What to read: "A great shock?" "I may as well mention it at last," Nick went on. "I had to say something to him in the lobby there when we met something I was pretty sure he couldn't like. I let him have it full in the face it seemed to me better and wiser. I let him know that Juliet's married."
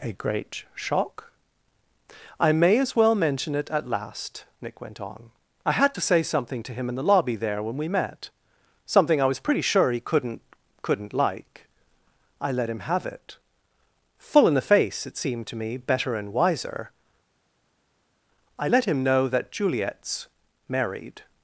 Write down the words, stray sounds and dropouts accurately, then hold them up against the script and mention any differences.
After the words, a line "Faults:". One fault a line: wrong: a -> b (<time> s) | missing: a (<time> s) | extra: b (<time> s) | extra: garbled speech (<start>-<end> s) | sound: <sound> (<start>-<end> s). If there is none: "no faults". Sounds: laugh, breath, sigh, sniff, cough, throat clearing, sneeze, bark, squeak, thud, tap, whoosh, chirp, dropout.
"A great shock?" "I may as well mention it at last," Nick went on. "I had to say something to him in the lobby there when we met something I was pretty sure he couldn't couldn't like. I let him have it full in the face it seemed to me better and wiser. I let him know that Juliet's married."
Faults:
extra: couldn't (10.8 s)